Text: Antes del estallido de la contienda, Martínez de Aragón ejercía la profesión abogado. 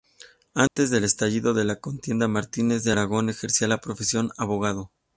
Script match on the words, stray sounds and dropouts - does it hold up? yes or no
no